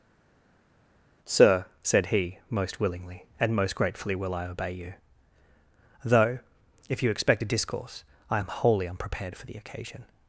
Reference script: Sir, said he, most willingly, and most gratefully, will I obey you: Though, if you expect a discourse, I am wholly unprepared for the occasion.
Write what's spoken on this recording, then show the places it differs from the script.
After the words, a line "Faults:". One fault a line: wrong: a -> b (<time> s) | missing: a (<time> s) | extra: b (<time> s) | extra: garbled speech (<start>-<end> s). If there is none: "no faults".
Sir, said he, most willingly, and most gratefully, will I obey you: Though, if you expect a discourse, I am wholly unprepared for the occasion.
Faults:
no faults